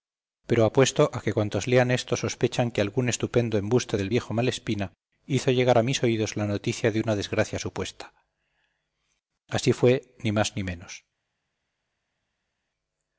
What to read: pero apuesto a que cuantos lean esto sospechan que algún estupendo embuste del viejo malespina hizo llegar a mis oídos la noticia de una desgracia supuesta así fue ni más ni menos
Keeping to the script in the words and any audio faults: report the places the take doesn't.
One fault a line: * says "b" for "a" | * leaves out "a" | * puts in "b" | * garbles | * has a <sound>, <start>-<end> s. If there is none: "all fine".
all fine